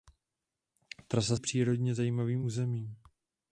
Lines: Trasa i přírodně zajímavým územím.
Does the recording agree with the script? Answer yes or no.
yes